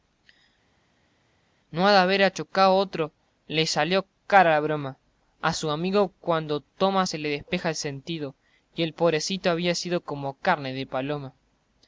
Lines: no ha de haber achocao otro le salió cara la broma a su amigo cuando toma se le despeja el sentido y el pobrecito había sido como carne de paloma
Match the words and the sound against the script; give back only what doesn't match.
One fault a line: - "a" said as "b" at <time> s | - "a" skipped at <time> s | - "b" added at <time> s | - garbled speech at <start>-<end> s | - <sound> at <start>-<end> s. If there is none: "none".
none